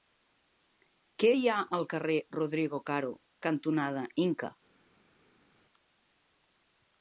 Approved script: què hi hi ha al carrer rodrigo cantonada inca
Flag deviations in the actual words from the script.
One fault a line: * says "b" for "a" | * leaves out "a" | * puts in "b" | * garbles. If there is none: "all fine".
* leaves out "hi"
* puts in "caro"